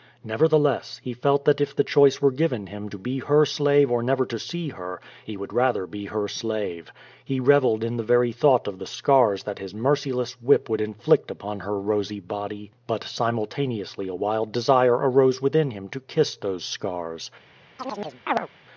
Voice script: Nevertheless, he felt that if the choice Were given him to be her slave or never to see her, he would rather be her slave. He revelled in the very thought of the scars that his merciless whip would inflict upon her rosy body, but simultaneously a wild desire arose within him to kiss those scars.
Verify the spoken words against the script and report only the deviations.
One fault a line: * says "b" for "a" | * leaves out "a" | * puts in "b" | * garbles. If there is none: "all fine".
all fine